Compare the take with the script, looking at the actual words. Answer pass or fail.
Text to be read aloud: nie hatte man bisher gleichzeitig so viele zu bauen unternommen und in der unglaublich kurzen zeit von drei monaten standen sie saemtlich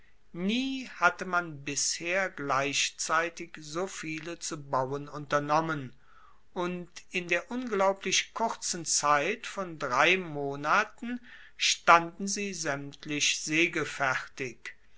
pass